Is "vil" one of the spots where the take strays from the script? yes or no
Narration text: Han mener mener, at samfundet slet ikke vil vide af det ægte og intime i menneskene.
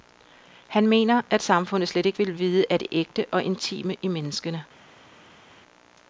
no